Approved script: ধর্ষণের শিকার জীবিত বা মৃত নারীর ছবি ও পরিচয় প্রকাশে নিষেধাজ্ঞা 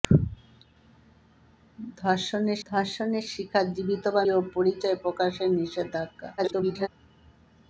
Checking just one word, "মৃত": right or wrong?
wrong